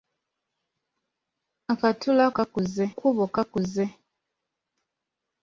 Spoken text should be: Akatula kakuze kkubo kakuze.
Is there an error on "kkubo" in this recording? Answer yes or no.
no